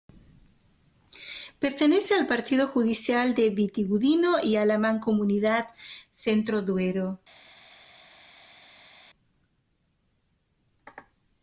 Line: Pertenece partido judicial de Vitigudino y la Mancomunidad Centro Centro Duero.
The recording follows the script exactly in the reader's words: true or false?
false